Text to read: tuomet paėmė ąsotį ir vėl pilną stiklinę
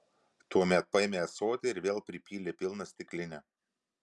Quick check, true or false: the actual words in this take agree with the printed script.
false